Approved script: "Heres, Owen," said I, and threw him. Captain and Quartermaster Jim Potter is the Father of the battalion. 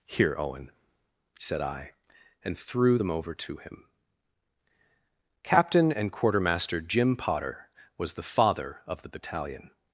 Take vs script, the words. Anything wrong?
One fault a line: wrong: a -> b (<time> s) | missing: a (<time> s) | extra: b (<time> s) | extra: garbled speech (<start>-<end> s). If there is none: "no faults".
wrong: Heres -> Here (0.1 s)
extra: them over to (3.0 s)
wrong: is -> was (8.0 s)